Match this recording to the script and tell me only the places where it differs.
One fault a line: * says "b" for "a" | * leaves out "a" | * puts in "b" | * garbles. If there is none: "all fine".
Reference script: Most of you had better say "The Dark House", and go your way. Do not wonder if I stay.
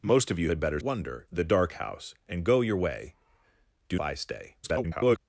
* says "wonder" for "say"
* leaves out "not wonder if"
* garbles